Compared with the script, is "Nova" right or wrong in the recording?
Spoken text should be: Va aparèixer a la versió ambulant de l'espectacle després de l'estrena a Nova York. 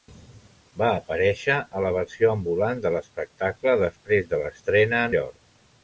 wrong